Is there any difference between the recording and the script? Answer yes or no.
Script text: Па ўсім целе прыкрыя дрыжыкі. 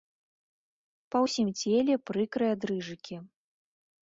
no